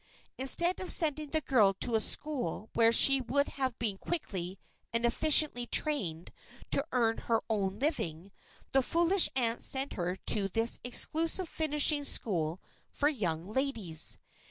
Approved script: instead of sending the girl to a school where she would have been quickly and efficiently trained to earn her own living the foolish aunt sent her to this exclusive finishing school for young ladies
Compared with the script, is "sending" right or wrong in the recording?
right